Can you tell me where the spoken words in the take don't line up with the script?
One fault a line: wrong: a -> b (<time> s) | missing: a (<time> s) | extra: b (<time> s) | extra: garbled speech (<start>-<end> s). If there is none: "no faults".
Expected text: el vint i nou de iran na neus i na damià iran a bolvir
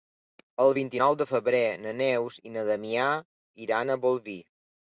wrong: iran -> febrer (1.3 s)